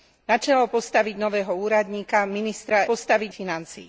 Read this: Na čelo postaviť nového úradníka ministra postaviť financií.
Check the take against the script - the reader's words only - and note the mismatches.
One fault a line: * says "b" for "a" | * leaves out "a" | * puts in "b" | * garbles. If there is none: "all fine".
all fine